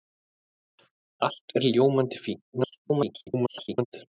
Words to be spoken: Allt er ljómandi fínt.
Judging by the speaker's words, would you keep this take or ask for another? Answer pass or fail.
fail